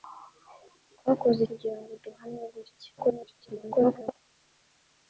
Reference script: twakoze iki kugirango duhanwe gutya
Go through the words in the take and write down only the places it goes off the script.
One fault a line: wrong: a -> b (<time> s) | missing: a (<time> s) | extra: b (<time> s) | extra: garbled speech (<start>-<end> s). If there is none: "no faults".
missing: iki (1.4 s)
extra: garbled speech (3.0-4.2 s)